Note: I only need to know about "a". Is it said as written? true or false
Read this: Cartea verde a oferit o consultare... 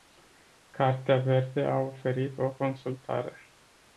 true